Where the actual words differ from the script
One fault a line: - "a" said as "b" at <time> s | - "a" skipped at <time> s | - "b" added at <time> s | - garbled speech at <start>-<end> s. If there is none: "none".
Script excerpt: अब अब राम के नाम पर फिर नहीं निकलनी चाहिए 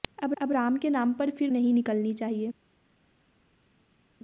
none